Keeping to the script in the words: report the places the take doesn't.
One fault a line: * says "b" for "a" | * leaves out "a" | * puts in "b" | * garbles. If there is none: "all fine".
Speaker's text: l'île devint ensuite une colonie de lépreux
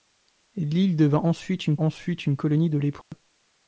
* puts in "ensuite une"